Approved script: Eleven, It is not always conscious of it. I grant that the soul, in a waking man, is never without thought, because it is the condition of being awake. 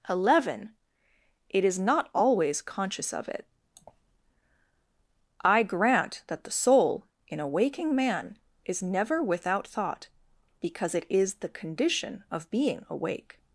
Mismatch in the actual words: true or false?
false